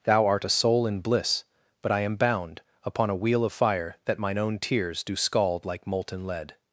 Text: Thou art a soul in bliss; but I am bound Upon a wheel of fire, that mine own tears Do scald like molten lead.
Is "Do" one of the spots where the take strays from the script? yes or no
no